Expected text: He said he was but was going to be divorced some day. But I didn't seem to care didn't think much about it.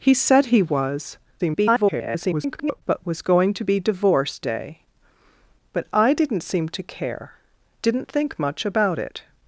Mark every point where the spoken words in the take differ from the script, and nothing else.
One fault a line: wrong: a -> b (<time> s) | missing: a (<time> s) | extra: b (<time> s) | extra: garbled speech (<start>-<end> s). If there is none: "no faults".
extra: garbled speech (1.4-2.8 s)
missing: some (4.5 s)